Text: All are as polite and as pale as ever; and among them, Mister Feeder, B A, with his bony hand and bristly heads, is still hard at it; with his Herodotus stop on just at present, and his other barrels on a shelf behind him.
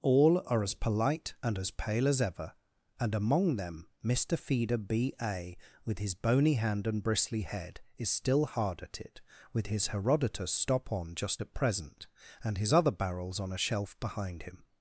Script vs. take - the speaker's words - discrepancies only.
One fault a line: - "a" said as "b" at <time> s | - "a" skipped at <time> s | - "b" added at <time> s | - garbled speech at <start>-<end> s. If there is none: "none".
- "heads" said as "head" at 7.4 s